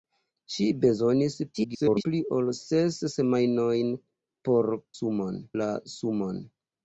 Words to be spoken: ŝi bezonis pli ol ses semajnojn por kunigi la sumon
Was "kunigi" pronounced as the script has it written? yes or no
no